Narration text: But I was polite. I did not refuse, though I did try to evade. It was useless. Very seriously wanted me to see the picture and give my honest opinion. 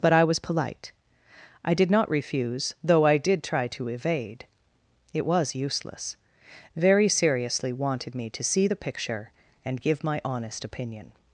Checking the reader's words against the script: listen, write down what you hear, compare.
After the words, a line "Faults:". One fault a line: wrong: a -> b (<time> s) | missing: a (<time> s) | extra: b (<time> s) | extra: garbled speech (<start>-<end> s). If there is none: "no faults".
But I was polite. I did not refuse, though I did try to evade. It was useless. Very seriously wanted me to see the picture and give my honest opinion.
Faults:
no faults